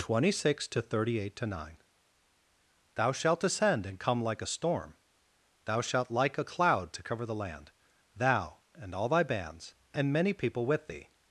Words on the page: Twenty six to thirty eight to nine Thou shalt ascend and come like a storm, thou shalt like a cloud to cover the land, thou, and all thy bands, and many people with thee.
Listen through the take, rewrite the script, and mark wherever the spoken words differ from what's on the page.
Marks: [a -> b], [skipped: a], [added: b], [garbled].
Twenty six to thirty eight to nine Thou shalt ascend and come like a storm, thou shalt like a cloud to cover the land, thou, and all thy bands, and many people with thee.